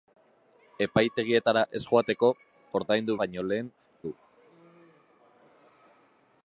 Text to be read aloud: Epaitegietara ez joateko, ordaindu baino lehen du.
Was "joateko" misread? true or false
false